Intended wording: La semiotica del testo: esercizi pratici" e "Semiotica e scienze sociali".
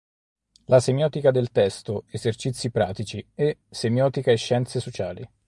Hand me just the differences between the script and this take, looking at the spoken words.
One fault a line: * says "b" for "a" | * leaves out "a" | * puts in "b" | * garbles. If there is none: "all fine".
all fine